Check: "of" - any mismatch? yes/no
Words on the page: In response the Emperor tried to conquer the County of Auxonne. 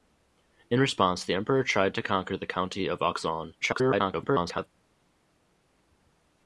no